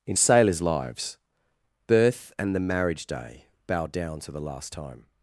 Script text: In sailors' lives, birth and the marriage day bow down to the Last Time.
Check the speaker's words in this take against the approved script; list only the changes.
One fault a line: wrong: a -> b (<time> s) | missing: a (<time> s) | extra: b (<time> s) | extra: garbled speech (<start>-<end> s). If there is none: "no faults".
no faults